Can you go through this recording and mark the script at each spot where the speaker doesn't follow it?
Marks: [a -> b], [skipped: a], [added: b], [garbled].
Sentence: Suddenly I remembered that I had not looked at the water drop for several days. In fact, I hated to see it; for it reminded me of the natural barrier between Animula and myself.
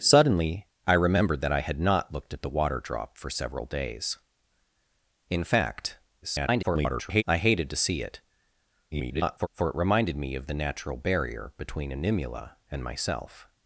Suddenly I remembered that I had not looked at the water drop for several days. In fact, [garbled] I hated to see it; [garbled] for it reminded me of the natural barrier between Animula and myself.